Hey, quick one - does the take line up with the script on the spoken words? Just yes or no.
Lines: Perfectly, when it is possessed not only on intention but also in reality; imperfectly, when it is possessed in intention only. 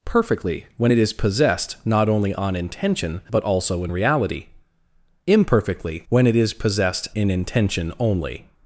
yes